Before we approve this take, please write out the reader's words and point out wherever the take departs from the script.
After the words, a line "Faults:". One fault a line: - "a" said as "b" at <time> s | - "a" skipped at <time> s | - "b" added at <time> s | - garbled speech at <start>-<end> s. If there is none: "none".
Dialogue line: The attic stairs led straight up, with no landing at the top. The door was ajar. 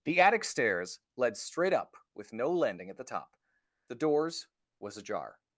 The attic stairs led straight up, with no landing at the top. The doors was ajar.
Faults:
- "door" said as "doors" at 3.9 s